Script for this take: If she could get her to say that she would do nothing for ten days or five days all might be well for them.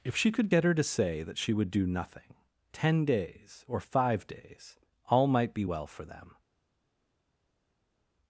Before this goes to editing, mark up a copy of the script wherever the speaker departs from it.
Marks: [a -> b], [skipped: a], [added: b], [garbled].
If she could get her to say that she would do nothing [skipped: for] ten days or five days all might be well for them.